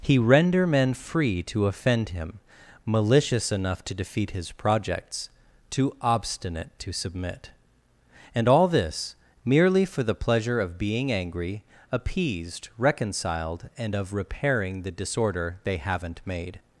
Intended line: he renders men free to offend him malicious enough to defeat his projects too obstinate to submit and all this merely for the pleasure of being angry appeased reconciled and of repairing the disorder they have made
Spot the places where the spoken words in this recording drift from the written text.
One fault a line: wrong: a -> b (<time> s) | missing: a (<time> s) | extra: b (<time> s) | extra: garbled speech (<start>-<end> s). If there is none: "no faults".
wrong: renders -> render (0.2 s)
wrong: have -> haven't (15.8 s)